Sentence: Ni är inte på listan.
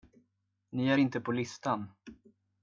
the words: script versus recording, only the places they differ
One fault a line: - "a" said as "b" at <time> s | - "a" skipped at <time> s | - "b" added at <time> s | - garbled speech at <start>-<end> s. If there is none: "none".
none